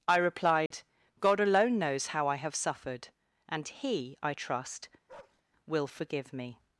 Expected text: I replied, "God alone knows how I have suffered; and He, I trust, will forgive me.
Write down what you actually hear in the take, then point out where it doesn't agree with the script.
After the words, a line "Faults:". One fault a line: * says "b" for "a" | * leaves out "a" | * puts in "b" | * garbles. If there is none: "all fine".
I replied, "God alone knows how I have suffered; and He, I trust, will forgive me.
Faults:
all fine